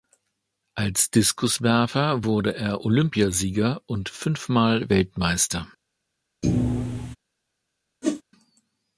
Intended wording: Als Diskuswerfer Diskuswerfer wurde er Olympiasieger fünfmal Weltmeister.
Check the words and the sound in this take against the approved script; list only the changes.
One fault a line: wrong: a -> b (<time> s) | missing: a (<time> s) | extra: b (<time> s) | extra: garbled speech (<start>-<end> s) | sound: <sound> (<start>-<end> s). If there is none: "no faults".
missing: Diskuswerfer (2.2 s)
extra: und (3.8 s)
sound: thud (6.4-7.2 s)
sound: whoosh (8.0-8.2 s)